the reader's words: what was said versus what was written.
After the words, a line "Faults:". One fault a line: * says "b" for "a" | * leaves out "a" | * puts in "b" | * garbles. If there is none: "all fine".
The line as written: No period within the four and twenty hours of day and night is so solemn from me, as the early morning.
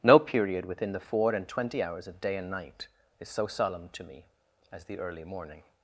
No period within the four and twenty hours of day and night is so solemn to me, as the early morning.
Faults:
* says "to" for "from"